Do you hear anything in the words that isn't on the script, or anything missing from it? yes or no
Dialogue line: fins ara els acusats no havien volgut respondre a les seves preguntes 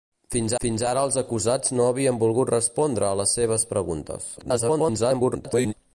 yes